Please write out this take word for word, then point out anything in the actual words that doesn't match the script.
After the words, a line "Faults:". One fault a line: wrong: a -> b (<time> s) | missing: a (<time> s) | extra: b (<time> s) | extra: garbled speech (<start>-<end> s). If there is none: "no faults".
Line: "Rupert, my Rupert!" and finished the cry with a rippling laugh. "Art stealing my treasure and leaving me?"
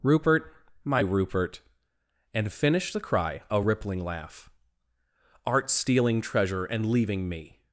"Rupert, my Rupert!" and finished the cry a rippling laugh. "Art stealing treasure and leaving me?"
Faults:
missing: with (3.4 s)
missing: my (6.2 s)